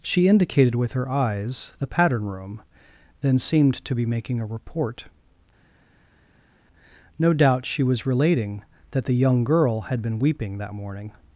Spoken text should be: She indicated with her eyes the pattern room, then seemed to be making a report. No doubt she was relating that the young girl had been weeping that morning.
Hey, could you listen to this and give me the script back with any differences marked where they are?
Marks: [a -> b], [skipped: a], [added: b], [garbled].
She indicated with her eyes the pattern room, then seemed to be making a report. No doubt she was relating that the young girl had been weeping that morning.